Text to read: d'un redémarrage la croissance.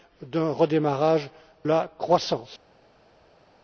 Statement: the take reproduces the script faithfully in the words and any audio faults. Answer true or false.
true